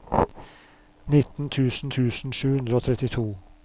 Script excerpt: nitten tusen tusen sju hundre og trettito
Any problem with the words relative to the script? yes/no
no